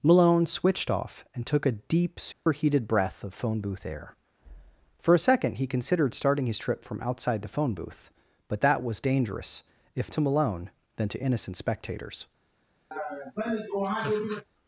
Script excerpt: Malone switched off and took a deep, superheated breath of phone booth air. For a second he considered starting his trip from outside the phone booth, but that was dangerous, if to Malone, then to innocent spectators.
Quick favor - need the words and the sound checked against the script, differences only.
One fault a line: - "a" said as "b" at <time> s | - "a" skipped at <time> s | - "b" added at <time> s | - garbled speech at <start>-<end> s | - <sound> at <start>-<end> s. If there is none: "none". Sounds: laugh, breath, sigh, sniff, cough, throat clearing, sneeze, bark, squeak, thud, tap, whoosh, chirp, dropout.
- dropout at 2.3-2.5 s
- laugh at 12.9-14.4 s